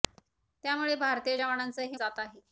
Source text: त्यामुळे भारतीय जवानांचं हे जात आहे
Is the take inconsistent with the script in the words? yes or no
no